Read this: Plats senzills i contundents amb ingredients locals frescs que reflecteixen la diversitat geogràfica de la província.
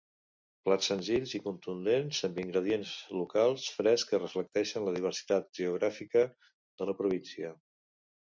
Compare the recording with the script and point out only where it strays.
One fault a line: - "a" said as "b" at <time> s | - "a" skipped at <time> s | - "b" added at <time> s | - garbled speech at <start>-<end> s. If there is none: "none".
none